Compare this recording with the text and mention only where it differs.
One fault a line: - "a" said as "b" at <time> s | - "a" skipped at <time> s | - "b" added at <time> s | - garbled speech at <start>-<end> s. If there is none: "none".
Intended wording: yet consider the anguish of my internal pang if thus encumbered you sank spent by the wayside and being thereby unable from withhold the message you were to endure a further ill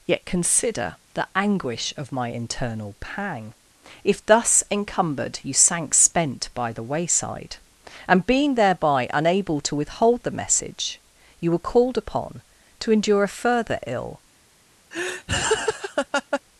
- "from" said as "to" at 9.6 s
- "called upon" added at 11.6 s